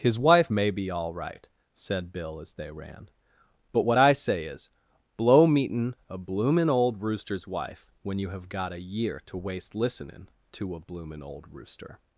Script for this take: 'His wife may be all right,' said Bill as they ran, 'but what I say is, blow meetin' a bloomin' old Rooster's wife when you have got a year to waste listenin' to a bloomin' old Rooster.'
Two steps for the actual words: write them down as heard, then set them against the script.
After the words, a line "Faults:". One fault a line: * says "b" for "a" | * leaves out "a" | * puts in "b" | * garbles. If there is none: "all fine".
'His wife may be all right,' said Bill as they ran, 'but what I say is, blow meetin' a bloomin' old Rooster's wife when you have got a year to waste listenin' to a bloomin' old Rooster.'
Faults:
all fine